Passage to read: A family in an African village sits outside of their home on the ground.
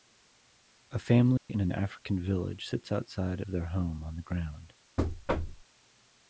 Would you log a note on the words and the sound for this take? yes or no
yes